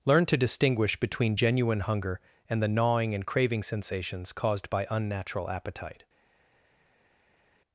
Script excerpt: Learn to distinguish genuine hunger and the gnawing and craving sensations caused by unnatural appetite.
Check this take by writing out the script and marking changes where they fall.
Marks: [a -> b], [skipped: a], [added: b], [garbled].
Learn to distinguish [added: between] genuine hunger and the gnawing and craving sensations caused by unnatural appetite.